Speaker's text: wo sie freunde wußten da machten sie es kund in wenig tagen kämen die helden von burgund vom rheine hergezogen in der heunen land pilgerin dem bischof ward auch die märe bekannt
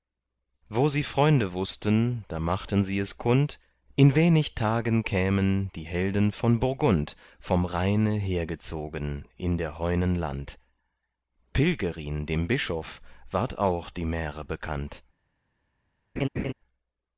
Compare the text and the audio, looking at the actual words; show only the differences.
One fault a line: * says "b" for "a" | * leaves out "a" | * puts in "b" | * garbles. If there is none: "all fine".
all fine